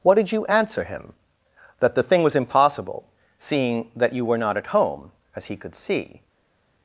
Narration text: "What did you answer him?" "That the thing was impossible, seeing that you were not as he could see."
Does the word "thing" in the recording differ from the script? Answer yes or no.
no